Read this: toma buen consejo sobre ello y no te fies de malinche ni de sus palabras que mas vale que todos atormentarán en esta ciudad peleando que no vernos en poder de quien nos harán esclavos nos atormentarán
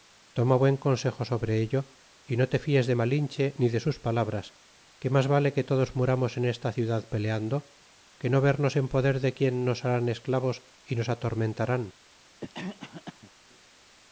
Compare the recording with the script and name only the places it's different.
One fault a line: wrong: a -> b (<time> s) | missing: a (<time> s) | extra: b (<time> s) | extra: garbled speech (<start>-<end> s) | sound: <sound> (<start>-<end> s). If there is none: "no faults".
wrong: atormentarán -> muramos (6.0 s)
extra: y (10.8 s)
sound: cough (12.4-13.3 s)